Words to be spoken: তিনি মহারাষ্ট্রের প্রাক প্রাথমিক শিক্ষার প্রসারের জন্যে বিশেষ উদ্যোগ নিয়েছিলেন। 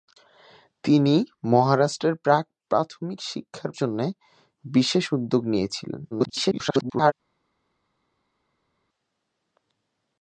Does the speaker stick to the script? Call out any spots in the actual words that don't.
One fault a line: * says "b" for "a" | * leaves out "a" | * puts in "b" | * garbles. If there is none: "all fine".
* leaves out "প্রসারের"
* garbles